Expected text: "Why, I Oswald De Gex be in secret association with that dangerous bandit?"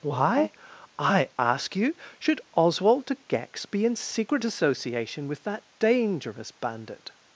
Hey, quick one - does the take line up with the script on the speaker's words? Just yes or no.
no